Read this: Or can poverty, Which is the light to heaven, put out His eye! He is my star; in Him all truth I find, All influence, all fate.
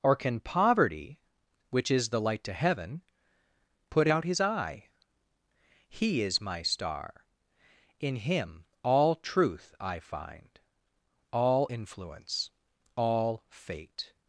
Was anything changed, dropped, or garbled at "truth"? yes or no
no